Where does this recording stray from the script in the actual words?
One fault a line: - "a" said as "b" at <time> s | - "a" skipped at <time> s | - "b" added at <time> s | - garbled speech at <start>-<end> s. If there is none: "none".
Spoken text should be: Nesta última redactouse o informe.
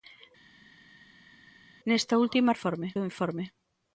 - "redactouse" said as "informe" at 2.5 s